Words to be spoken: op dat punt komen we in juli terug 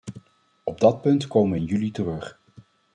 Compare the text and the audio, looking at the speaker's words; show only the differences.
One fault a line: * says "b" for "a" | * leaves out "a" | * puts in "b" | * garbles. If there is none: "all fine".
all fine